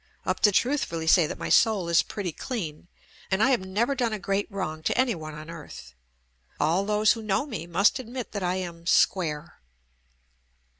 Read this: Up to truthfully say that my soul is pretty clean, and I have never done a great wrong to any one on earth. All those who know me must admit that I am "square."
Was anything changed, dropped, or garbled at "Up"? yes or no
no